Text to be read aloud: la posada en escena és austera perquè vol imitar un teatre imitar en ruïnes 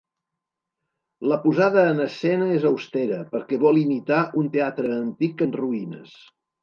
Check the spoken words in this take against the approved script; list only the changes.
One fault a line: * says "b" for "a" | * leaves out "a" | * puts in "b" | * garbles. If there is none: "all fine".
* says "antic" for "imitar"